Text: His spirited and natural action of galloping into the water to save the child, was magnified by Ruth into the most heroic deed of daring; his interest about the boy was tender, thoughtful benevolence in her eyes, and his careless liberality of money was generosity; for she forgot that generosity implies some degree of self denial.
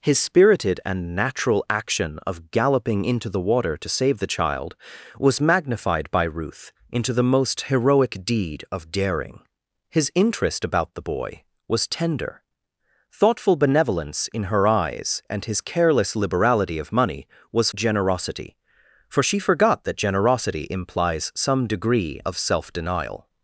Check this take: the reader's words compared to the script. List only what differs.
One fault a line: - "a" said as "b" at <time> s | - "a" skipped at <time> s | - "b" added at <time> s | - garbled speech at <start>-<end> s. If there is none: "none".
none